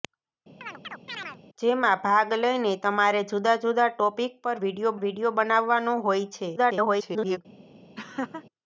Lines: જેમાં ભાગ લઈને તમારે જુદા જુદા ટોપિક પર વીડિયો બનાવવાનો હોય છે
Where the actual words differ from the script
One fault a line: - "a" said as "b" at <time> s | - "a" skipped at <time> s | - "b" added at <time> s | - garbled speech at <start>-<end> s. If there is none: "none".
- "વીડિયો" added at 5.0 s
- garbled speech at 6.6-7.4 s